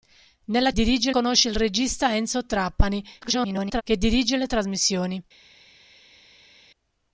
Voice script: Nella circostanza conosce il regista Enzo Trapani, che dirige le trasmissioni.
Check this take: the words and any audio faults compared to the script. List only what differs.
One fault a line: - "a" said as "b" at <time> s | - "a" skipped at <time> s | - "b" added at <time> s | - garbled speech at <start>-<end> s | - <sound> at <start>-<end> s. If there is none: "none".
- "circostanza" said as "dirige" at 0.7 s
- garbled speech at 3.2-3.8 s